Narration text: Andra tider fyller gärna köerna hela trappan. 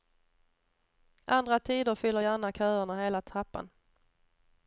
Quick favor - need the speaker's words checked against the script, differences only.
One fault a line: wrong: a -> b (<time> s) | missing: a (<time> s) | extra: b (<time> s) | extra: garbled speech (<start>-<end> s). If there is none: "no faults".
no faults